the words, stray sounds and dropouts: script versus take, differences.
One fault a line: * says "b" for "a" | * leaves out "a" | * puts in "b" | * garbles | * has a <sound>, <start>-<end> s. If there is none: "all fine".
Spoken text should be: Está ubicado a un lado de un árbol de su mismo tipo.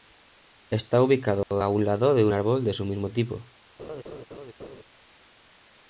* has a dropout, 1.4-1.5 s
* has a laugh, 3.8-4.8 s